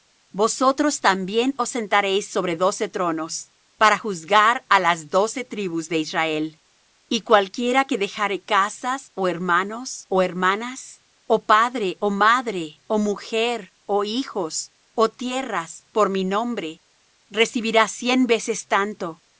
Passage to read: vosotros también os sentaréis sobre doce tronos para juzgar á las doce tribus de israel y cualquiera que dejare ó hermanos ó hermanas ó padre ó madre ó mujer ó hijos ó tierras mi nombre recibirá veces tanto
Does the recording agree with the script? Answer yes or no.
no